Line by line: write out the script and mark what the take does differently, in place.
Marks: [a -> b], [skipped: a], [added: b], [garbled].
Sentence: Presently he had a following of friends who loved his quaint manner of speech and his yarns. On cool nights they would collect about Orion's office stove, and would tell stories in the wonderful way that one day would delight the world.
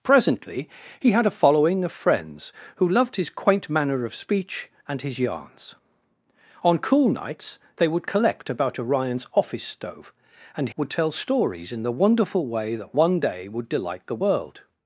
Presently he had a following of friends who loved his quaint manner of speech and his yarns. On cool nights they would collect about Orion's office stove, and would tell stories in the wonderful way that one day would delight the world.